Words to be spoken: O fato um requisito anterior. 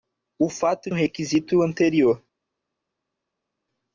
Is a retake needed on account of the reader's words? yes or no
no